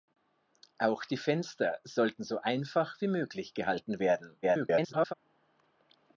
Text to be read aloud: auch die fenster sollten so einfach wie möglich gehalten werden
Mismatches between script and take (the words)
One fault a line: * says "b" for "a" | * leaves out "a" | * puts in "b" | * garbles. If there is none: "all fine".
* garbles